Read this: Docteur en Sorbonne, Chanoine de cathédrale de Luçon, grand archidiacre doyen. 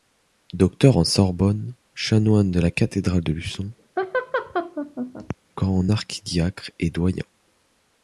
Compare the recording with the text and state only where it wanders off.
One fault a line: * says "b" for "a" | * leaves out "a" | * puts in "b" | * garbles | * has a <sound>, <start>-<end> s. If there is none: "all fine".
* puts in "la"
* has a laugh, 4.0-5.4 s
* puts in "et"